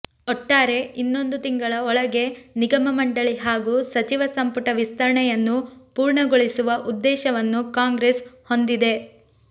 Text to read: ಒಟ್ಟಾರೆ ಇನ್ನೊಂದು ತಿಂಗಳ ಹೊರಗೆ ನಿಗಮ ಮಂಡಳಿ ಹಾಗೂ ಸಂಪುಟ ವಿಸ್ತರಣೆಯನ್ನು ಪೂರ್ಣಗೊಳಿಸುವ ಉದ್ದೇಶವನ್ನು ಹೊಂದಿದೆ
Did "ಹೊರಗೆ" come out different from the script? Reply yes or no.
yes